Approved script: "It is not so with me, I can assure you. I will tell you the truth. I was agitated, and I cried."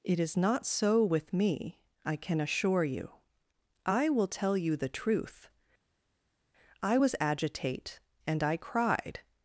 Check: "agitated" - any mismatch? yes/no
yes